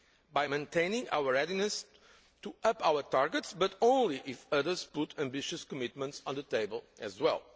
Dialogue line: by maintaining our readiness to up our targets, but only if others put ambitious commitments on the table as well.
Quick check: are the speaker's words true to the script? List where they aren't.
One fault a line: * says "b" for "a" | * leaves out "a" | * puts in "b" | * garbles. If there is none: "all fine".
all fine